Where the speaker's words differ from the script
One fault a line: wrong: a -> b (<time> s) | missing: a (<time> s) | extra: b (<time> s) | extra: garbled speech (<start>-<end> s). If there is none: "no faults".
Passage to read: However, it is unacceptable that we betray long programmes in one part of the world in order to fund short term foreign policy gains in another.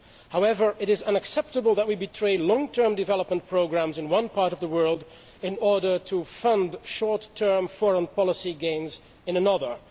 extra: term development (2.7 s)